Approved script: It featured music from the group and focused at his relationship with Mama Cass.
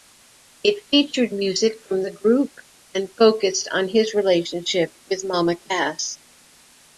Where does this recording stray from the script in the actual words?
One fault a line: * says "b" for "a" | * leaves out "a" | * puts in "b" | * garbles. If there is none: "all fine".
* says "on" for "at"